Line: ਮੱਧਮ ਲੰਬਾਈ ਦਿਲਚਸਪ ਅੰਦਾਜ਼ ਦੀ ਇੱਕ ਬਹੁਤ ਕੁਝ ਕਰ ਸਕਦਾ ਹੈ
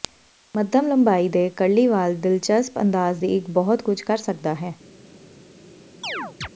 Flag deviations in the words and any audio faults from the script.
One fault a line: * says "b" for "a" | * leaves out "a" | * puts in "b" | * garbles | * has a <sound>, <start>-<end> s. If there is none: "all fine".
* puts in "ਦੇ ਕਰਲੀ ਵਾਲ"
* has a chirp, 6.0-6.5 s